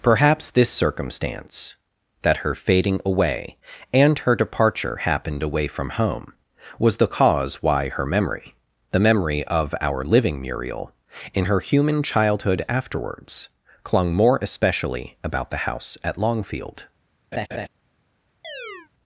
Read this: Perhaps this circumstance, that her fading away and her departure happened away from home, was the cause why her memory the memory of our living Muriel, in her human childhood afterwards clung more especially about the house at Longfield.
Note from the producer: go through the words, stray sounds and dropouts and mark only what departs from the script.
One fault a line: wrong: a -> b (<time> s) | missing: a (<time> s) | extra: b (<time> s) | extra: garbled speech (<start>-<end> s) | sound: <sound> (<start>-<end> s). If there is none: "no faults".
sound: laugh (17.3-17.7 s)
sound: chirp (18.4-18.9 s)